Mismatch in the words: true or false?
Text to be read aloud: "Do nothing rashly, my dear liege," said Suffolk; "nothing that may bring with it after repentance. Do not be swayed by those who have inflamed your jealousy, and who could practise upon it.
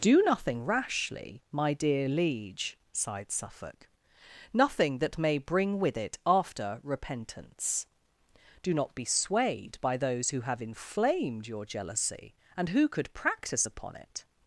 true